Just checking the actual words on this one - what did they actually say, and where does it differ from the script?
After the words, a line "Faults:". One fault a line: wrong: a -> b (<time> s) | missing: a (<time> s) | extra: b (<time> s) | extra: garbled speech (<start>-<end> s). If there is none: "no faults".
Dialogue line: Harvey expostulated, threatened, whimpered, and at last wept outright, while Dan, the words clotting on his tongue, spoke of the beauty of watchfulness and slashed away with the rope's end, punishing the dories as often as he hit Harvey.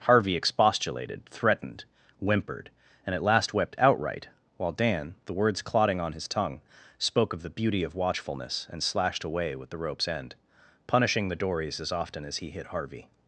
Harvey expostulated, threatened, whimpered, and at last wept outright, while Dan, the words clotting on his tongue, spoke of the beauty of watchfulness and slashed away with the rope's end, punishing the dories as often as he hit Harvey.
Faults:
no faults